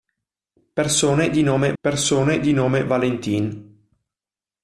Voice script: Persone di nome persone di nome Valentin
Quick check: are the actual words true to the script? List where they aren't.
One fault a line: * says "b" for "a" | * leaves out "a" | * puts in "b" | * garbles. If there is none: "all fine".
all fine